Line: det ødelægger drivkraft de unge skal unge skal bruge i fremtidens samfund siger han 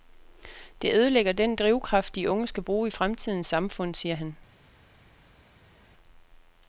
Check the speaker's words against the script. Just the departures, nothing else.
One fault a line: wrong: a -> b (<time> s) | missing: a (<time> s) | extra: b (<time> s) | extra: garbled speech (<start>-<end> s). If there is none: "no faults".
extra: den (1.3 s)
missing: unge skal (2.6 s)